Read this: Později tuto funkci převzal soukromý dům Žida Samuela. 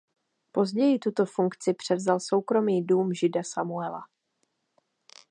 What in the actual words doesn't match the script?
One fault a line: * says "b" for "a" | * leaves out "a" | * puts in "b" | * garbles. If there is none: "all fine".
all fine